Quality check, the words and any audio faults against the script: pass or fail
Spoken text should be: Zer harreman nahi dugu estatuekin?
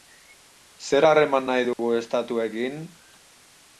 fail